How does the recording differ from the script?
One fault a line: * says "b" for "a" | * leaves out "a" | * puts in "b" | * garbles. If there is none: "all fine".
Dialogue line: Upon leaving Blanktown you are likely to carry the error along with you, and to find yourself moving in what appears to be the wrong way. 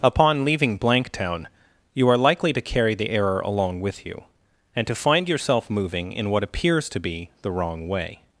all fine